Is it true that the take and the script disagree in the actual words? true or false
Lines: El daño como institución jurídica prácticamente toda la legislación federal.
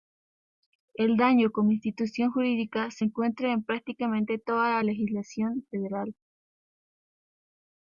true